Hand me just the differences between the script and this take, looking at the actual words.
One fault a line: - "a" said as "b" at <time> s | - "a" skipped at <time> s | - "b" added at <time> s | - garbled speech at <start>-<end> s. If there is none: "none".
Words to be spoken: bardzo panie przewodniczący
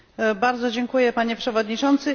- "dziękuję" added at 0.7 s